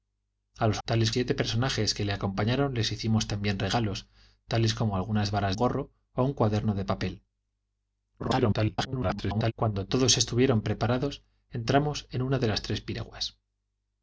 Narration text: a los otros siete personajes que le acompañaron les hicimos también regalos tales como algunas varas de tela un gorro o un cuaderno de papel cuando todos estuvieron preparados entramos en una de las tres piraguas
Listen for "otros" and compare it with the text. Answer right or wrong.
wrong